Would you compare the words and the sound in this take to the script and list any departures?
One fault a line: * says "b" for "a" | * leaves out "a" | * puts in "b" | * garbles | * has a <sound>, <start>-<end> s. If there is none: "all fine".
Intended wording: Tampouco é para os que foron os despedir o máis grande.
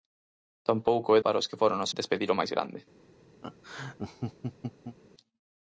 * has a laugh, 3.4-5.0 s